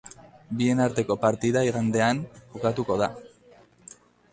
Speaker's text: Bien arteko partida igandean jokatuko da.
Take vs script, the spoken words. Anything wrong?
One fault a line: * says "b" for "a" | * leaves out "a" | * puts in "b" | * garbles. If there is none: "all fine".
all fine